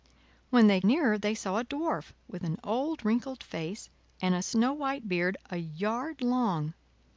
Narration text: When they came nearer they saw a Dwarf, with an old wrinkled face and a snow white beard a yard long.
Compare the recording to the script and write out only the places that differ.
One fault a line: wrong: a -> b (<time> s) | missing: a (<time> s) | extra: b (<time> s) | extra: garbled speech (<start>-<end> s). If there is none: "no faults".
missing: came (0.8 s)